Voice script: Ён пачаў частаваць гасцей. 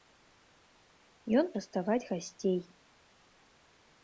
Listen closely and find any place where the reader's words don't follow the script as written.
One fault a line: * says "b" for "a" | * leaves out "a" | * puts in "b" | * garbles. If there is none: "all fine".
* leaves out "пачаў"